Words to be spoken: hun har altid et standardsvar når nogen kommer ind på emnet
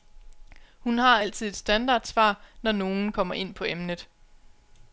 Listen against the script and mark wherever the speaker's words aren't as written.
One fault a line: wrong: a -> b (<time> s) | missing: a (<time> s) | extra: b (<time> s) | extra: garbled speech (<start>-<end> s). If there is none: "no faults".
no faults